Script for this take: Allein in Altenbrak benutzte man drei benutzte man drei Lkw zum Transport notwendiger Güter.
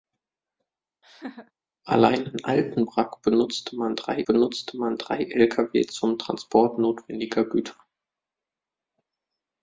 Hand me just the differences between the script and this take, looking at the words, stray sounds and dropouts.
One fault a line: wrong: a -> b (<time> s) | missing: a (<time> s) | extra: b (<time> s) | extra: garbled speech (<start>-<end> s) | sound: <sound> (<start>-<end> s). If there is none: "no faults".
sound: laugh (1.0-1.5 s)